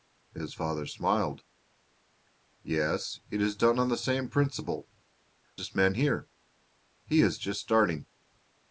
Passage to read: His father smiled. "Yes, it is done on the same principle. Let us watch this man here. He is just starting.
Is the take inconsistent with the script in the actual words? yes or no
yes